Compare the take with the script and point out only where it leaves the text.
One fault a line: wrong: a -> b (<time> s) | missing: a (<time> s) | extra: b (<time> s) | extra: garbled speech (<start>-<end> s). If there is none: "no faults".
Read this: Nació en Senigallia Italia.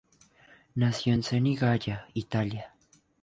no faults